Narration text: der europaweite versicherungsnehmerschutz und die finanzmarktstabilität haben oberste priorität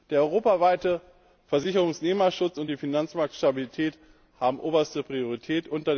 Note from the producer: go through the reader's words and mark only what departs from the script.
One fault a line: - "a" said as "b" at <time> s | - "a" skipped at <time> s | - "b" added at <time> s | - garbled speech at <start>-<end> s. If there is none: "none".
none